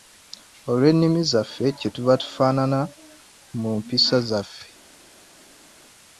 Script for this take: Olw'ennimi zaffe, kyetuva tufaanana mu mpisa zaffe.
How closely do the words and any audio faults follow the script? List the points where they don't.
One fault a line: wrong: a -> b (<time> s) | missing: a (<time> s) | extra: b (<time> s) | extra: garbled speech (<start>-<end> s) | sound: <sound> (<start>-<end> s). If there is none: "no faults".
no faults